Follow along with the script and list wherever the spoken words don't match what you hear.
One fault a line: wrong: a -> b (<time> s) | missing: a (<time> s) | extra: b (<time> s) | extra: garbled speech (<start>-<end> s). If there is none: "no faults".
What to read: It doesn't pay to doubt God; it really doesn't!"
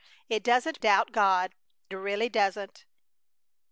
missing: pay to (0.8 s)
missing: it (1.5 s)